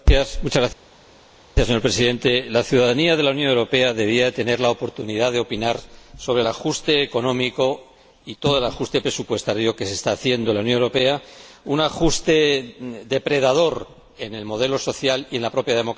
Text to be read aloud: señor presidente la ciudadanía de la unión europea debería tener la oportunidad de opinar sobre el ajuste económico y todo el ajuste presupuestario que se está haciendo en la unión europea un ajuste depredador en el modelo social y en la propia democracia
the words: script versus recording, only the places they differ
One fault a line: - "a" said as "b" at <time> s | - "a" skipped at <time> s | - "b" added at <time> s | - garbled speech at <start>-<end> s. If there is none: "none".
none